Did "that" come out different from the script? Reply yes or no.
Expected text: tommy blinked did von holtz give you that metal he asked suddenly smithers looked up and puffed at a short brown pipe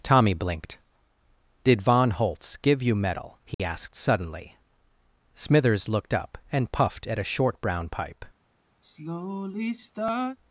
yes